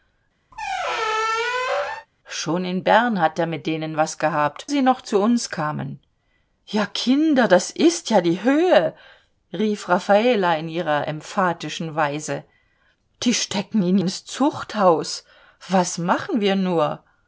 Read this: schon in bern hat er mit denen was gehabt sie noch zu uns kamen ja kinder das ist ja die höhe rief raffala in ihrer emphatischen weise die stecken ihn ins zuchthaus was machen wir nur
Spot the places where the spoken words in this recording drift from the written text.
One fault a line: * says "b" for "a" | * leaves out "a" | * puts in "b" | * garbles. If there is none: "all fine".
all fine